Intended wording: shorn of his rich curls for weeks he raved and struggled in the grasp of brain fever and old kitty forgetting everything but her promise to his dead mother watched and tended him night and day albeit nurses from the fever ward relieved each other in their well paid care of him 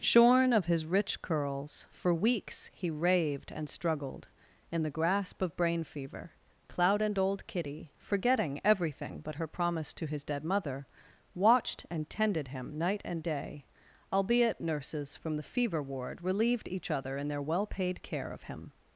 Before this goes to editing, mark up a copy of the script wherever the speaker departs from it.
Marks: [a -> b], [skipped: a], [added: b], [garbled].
shorn of his rich curls for weeks he raved and struggled in the grasp of brain fever [added: cloud] and old kitty forgetting everything but her promise to his dead mother watched and tended him night and day albeit nurses from the fever ward relieved each other in their well paid care of him